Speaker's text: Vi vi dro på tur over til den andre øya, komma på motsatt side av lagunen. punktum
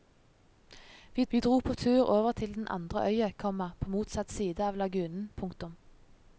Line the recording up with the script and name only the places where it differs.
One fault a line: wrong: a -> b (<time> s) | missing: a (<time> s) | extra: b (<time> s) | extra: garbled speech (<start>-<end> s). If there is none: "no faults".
no faults